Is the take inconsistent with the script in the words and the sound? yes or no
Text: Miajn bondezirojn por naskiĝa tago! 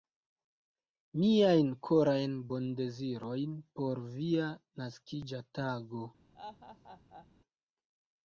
yes